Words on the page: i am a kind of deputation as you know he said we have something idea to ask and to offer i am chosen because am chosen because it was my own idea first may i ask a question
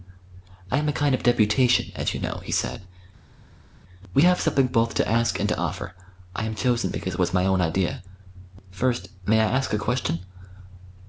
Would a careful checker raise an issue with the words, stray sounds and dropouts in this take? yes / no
yes